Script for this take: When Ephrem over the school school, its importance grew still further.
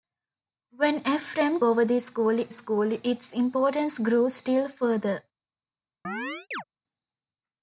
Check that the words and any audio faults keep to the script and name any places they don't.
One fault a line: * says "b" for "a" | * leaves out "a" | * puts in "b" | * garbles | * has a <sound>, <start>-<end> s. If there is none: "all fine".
* has a chirp, 6.0-6.6 s